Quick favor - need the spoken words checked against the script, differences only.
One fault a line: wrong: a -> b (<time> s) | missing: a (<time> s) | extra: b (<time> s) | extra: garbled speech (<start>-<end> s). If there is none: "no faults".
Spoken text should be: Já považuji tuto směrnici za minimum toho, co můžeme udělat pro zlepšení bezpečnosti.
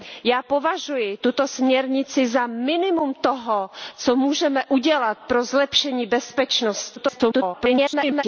extra: garbled speech (7.0-8.2 s)